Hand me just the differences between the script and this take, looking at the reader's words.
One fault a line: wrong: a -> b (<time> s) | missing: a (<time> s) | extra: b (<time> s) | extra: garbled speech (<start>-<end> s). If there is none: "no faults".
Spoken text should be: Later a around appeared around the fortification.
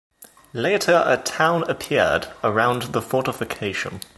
wrong: around -> town (1.2 s)